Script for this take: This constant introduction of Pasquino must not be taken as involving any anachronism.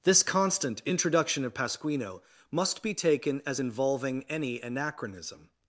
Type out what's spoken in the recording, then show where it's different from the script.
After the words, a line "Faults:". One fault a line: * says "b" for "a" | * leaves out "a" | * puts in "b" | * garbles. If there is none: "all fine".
This constant introduction of Pasquino must be taken as involving any anachronism.
Faults:
* leaves out "not"